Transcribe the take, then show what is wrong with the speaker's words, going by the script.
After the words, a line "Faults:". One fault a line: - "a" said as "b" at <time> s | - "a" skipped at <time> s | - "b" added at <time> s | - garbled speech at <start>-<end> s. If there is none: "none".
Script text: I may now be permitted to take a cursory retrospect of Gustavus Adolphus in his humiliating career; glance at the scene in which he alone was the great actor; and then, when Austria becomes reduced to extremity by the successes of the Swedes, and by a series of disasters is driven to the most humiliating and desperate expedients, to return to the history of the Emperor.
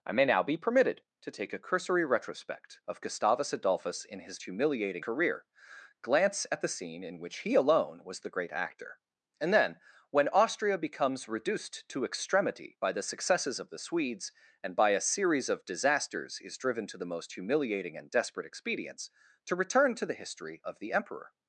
I may now be permitted to take a cursory retrospect of Gustavus Adolphus in his humiliating career; glance at the scene in which he alone was the great actor; and then, when Austria becomes reduced to extremity by the successes of the Swedes, and by a series of disasters is driven to the most humiliating and desperate expedients, to return to the history of the Emperor.
Faults:
none